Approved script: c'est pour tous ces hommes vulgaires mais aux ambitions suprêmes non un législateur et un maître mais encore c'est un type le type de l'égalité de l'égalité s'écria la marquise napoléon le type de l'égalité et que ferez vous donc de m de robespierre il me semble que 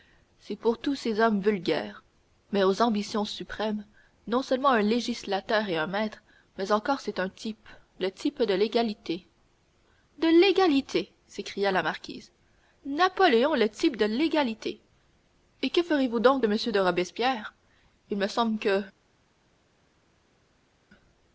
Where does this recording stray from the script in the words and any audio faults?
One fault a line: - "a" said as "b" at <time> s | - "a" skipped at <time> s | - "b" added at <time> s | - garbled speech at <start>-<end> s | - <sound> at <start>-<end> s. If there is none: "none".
- "seulement" added at 4.4 s